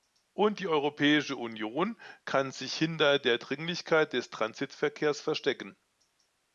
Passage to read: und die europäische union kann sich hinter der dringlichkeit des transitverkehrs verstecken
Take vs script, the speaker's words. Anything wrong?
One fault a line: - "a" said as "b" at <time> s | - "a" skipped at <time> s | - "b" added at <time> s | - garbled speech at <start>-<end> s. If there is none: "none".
none